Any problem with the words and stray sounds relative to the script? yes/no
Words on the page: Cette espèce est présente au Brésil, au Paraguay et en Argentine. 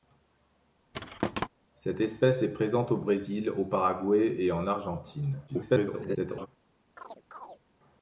yes